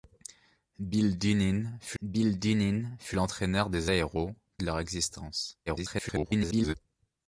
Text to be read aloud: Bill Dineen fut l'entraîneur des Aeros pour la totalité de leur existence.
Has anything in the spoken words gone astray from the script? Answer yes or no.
yes